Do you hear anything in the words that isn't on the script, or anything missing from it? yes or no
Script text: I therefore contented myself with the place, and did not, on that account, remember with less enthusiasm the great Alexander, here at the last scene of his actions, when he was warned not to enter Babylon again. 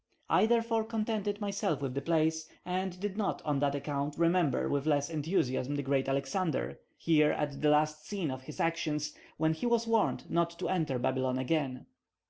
no